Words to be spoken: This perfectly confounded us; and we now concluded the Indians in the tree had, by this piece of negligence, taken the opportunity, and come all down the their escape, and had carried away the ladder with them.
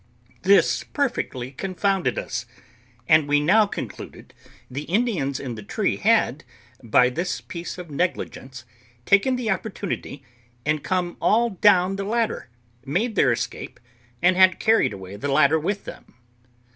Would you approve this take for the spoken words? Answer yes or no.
no